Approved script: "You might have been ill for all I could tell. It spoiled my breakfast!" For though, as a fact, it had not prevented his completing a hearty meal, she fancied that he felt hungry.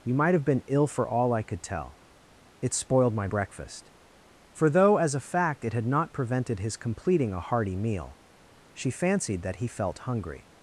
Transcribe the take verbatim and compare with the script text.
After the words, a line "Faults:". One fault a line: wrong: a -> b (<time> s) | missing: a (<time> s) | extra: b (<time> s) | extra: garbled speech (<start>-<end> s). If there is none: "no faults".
"You might have been ill for all I could tell. It spoiled my breakfast!" For though, as a fact, it had not prevented his completing a hearty meal, she fancied that he felt hungry.
Faults:
no faults